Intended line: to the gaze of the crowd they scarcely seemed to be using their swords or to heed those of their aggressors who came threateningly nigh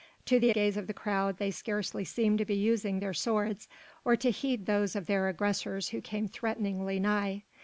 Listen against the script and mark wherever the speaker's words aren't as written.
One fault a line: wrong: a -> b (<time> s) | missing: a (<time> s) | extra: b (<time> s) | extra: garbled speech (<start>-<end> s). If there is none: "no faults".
no faults